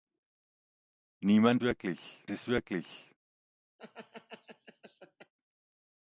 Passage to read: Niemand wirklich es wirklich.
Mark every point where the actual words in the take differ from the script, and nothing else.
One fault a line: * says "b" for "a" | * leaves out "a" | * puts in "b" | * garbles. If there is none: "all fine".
all fine